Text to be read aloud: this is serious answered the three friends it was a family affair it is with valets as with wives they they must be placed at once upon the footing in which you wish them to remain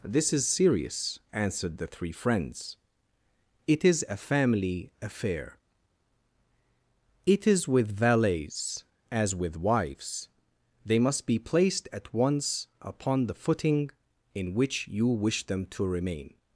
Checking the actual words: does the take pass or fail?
fail